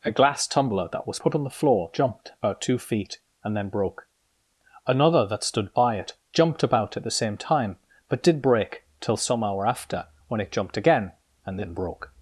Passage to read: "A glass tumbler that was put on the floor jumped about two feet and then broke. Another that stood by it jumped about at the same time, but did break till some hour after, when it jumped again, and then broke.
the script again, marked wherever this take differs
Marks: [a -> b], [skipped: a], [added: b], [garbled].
"A glass tumbler that was put on the floor jumped about two feet and then broke. Another that stood by it jumped about at the same time, but did break till some hour after, when it jumped again, and then broke.